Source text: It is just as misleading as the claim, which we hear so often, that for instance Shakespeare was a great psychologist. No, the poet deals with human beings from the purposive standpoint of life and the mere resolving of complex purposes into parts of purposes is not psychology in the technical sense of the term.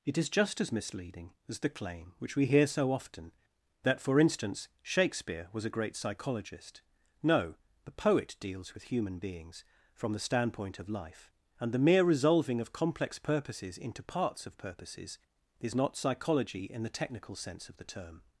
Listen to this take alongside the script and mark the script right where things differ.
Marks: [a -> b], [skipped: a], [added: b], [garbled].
It is just as misleading as the claim, which we hear so often, that for instance Shakespeare was a great psychologist. No, the poet deals with human beings from the [skipped: purposive] standpoint of life and the mere resolving of complex purposes into parts of purposes is not psychology in the technical sense of the term.